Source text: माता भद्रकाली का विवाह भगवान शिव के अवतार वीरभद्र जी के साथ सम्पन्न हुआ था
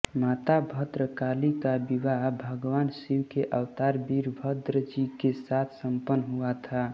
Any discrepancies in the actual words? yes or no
no